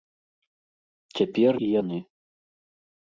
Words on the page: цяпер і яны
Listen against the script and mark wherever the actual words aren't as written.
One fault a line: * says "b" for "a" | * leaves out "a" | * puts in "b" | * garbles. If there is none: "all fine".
all fine